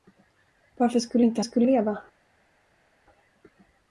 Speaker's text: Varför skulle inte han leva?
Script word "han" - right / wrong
wrong